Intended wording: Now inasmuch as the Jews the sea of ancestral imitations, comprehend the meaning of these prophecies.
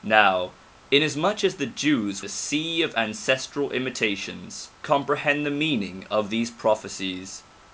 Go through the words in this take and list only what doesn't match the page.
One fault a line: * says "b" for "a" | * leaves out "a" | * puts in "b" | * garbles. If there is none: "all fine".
all fine